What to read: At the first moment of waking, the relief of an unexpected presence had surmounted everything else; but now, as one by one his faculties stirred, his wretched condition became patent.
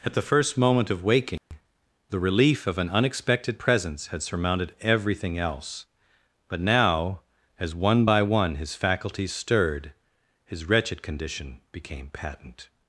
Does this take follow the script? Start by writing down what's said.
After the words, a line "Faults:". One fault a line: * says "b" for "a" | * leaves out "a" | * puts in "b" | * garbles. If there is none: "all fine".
At the first moment of waking, the relief of an unexpected presence had surmounted everything else; but now, as one by one his faculties stirred, his wretched condition became patent.
Faults:
all fine